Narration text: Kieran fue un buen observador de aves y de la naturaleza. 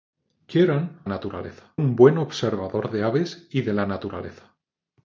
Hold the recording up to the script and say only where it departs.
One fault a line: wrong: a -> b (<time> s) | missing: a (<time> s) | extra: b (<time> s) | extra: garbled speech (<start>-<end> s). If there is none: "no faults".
wrong: fue -> naturaleza (1.1 s)